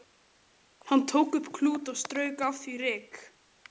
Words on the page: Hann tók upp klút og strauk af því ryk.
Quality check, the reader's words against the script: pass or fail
pass